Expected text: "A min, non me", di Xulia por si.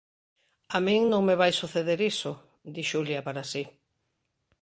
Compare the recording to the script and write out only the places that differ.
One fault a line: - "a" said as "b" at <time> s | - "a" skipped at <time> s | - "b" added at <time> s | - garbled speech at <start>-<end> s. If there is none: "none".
- "vai suceder iso" added at 1.4 s
- "por" said as "para" at 3.3 s